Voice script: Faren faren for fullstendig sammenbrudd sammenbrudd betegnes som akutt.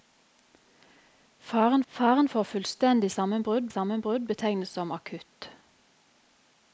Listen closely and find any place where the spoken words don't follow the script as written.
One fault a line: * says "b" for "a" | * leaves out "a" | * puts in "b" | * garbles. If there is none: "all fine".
all fine